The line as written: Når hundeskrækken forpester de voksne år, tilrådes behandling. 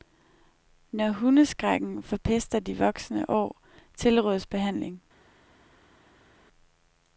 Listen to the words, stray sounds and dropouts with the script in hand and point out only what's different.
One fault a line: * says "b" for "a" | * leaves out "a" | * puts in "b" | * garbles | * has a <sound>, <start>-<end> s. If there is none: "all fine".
all fine